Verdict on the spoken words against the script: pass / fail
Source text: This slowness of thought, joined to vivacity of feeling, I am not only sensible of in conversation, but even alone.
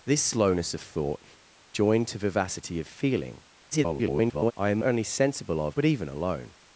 fail